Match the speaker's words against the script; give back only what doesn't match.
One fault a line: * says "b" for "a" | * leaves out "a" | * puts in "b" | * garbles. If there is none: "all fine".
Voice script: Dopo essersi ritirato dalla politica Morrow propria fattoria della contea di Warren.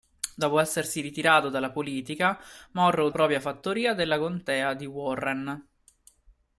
all fine